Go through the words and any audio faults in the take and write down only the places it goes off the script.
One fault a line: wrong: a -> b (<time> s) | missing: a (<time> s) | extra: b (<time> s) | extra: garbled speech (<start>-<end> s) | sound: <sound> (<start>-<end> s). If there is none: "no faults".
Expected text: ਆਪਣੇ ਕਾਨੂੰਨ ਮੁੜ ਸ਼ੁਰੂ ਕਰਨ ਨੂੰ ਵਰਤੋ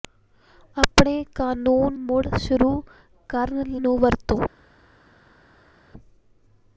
no faults